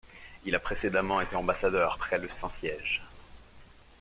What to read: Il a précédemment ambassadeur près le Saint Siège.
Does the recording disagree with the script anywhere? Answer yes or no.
yes